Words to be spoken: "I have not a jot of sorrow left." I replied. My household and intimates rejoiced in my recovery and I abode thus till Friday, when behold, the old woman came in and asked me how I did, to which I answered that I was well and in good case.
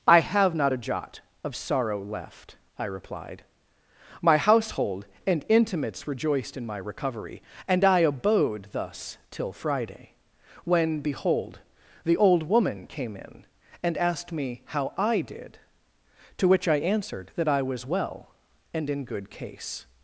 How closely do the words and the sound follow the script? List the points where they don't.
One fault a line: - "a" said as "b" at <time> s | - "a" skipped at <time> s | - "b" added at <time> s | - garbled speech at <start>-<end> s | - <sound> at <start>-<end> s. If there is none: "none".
none